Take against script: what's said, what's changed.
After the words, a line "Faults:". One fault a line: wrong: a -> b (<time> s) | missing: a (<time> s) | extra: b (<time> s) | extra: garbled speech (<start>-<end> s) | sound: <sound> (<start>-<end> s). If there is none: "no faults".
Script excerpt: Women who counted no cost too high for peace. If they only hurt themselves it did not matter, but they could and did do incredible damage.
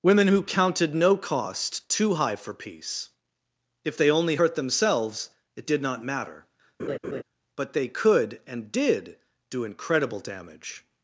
Women who counted no cost too high for peace. If they only hurt themselves it did not matter, but they could and did do incredible damage.
Faults:
sound: laugh (6.8-7.2 s)